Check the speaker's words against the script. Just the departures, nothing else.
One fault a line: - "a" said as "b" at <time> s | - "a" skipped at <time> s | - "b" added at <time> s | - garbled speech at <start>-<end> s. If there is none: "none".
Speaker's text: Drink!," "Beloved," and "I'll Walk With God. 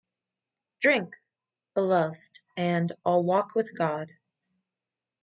none